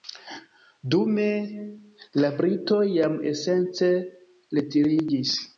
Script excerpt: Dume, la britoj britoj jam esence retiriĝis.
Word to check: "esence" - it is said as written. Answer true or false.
true